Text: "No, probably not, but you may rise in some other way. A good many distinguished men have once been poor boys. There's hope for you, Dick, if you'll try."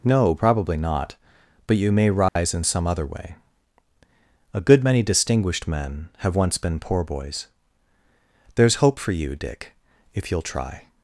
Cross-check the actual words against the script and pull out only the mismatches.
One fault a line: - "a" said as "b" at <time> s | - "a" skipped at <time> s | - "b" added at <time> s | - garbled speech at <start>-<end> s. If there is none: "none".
none